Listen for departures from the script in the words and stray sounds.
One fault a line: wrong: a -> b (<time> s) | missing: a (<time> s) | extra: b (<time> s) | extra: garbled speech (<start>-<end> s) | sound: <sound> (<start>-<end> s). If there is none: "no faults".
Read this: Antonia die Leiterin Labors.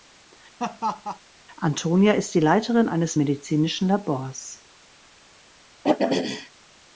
sound: laugh (0.6-1.2 s)
extra: ist (2.1 s)
extra: eines medizinischen (2.9 s)
sound: throat clearing (5.8-6.5 s)